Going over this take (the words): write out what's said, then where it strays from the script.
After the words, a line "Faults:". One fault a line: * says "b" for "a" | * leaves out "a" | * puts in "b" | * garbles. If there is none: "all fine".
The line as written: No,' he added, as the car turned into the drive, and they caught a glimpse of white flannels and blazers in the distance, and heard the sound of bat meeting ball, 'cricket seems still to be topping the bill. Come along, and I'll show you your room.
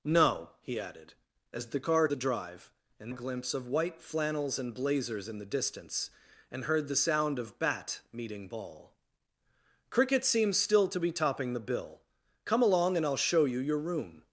No,' he added, as the car the drive, and a glimpse of white flannels and blazers in the distance, and heard the sound of bat meeting ball, 'cricket seems still to be topping the bill. Come along, and I'll show you your room.
Faults:
* leaves out "turned into"
* leaves out "they caught"